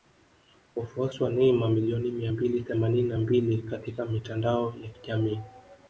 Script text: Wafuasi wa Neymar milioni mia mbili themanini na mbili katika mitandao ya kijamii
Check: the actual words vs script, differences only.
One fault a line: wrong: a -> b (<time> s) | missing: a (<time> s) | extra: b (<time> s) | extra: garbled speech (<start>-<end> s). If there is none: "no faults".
no faults